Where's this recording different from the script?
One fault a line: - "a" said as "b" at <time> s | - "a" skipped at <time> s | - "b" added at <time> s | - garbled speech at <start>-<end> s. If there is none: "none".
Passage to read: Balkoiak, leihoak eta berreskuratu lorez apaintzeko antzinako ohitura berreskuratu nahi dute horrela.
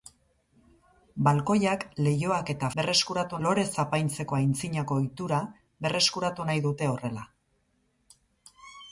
none